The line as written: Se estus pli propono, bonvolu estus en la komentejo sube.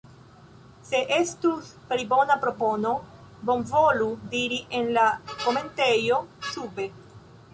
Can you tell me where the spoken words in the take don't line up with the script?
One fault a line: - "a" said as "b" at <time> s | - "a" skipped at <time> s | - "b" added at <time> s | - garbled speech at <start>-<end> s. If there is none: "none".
- "bona" added at 2.1 s
- "estus" said as "diri" at 4.3 s